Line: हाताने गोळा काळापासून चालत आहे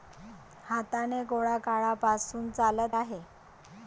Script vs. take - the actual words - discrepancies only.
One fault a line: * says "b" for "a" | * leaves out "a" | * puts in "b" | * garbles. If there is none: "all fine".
all fine